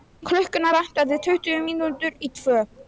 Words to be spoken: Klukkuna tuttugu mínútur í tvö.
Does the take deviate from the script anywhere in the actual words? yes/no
yes